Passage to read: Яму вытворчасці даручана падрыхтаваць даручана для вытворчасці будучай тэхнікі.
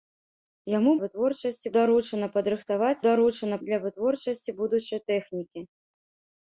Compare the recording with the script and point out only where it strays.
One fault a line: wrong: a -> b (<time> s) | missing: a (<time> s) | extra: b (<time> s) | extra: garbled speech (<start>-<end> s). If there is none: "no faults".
no faults